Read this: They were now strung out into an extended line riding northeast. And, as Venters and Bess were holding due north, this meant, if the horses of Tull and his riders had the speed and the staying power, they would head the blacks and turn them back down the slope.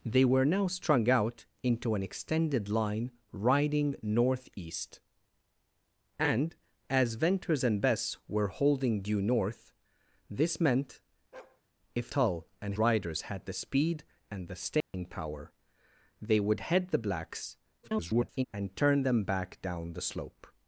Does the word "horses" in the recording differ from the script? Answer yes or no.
yes